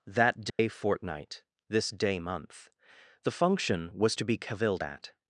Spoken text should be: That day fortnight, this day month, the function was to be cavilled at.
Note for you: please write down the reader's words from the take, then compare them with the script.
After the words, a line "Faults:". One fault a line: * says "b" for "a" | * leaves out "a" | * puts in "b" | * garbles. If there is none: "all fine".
That day fortnight, this day month, the function was to be cavilled at.
Faults:
all fine